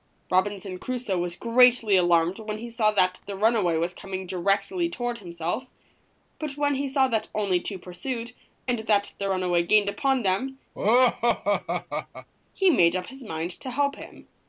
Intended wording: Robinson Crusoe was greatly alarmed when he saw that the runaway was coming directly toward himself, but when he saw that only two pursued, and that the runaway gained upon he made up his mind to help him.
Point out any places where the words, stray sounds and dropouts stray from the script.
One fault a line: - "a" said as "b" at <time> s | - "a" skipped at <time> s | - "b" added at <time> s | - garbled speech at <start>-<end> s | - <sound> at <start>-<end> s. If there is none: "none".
- "them" added at 10.2 s
- laugh at 10.7-12.3 s